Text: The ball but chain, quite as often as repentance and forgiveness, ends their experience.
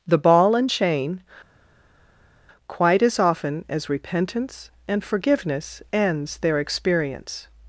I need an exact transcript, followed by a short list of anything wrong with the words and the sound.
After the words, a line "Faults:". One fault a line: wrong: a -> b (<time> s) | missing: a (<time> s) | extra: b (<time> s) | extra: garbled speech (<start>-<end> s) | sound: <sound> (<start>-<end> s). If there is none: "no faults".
The ball and chain, quite as often as repentance and forgiveness, ends their experience.
Faults:
wrong: but -> and (0.6 s)